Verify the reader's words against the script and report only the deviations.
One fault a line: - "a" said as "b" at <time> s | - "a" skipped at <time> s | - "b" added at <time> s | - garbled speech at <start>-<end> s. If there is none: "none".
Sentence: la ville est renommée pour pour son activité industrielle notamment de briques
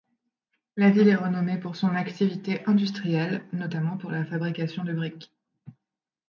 - "pour" skipped at 1.8 s
- "pour la fabrication" added at 4.0 s